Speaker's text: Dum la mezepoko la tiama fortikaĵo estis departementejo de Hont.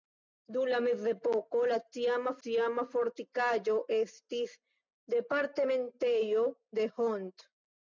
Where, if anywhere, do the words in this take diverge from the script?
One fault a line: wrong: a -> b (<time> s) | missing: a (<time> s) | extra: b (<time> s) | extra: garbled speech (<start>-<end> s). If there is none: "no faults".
extra: tiama (2.5 s)